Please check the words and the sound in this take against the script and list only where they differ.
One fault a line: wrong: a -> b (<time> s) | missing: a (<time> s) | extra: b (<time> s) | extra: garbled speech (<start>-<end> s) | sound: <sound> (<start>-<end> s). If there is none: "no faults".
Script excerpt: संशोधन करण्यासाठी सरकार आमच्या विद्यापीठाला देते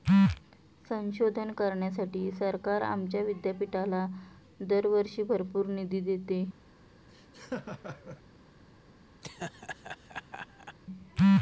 extra: दरवर्षी भरपूर निधी (4.6 s)
sound: laugh (7.1-8.2 s)
sound: laugh (9.2-10.8 s)